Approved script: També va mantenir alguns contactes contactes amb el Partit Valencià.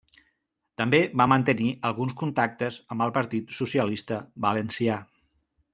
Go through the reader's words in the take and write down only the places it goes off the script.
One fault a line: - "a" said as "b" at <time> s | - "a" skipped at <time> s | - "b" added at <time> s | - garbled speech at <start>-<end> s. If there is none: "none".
- "contactes" skipped at 2.8 s
- "Socialista" added at 3.6 s